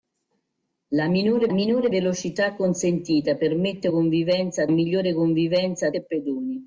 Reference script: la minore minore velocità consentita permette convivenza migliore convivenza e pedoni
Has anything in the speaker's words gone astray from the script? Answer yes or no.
no